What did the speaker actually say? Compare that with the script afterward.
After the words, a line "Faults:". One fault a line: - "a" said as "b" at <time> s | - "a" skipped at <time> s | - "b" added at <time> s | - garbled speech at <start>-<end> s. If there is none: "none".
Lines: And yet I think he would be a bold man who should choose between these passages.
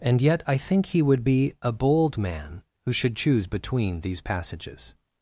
And yet I think he would be a bold man who should choose between these passages.
Faults:
none